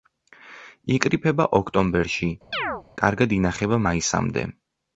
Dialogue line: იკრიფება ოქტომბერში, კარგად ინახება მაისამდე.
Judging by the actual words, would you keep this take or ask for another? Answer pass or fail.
pass